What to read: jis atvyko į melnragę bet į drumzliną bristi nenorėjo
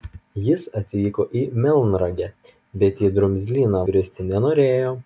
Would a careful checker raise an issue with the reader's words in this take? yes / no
no